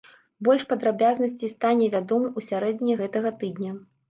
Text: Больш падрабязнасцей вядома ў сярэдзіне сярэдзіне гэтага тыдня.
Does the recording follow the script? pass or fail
fail